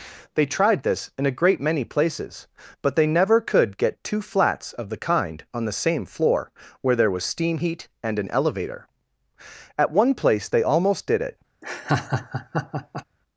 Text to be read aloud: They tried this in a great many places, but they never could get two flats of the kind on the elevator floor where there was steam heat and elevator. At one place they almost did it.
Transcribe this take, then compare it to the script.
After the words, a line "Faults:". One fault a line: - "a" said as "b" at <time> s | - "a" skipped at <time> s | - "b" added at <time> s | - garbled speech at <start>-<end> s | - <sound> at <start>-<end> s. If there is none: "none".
They tried this in a great many places, but they never could get two flats of the kind on the same floor where there was steam heat and an elevator. At one place they almost did it.
Faults:
- "elevator" said as "same" at 5.8 s
- "an" added at 8.2 s
- laugh at 11.6-13.0 s